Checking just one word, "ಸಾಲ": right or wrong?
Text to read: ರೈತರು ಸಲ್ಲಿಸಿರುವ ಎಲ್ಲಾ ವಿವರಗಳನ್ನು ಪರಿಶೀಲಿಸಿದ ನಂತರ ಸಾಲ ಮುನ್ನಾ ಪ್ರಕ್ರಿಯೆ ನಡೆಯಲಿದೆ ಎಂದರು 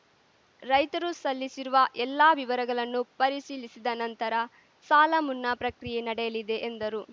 right